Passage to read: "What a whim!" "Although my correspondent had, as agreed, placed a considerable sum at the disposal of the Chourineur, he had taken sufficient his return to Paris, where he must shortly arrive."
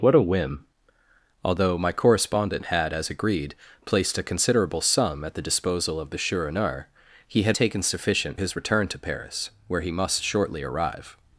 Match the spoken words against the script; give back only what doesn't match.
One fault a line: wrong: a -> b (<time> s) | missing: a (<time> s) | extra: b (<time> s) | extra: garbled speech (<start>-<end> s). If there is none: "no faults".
no faults